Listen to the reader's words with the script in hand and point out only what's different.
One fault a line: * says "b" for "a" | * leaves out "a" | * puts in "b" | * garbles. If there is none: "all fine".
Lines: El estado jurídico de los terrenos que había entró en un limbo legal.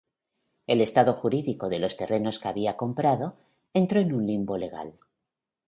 * puts in "comprado"